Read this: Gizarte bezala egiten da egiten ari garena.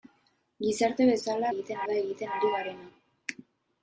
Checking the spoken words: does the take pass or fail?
pass